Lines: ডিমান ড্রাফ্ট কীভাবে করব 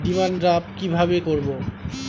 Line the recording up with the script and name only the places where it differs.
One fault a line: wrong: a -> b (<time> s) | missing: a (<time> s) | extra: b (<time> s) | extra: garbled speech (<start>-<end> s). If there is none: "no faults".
no faults